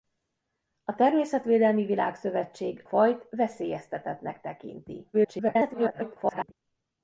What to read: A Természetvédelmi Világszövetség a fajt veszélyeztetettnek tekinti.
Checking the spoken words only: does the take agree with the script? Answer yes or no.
no